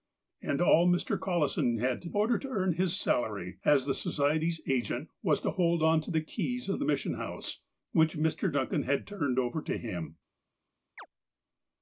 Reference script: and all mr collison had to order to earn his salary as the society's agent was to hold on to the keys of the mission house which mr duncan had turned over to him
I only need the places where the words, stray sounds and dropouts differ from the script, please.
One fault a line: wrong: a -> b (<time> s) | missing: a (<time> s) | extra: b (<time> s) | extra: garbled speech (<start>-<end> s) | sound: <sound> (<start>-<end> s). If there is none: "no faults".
sound: chirp (11.0-11.1 s)